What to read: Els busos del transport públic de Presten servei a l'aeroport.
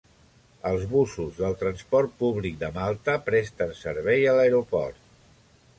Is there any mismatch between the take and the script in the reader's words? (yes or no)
yes